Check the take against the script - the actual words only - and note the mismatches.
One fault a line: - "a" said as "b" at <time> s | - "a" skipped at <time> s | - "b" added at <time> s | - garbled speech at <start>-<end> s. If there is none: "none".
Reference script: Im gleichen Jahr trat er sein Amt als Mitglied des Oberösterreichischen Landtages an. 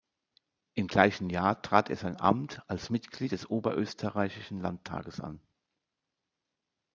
none